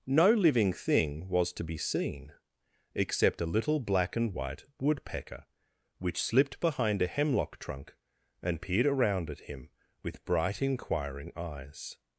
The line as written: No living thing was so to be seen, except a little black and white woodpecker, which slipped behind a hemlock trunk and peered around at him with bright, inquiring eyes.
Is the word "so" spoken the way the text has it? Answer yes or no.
no